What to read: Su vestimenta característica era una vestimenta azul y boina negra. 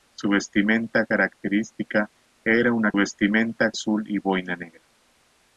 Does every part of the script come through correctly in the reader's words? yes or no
yes